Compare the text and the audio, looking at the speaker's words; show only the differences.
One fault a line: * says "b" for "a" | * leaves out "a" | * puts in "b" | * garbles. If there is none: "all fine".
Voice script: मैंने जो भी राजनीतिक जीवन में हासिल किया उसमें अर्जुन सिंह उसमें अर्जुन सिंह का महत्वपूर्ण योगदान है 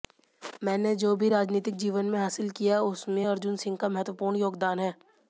* leaves out "उसमें अर्जुन सिंह"